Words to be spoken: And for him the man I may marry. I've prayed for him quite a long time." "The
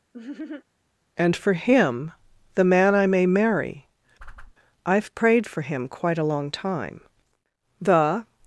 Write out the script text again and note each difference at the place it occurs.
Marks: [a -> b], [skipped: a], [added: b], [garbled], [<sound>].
[laugh] And for him the man I may marry. [whoosh] I've prayed for him quite a long time." "The